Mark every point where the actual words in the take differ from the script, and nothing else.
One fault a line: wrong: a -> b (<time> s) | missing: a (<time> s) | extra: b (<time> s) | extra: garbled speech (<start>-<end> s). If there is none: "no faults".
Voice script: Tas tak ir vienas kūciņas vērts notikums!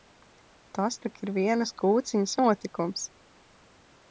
missing: vērts (2.4 s)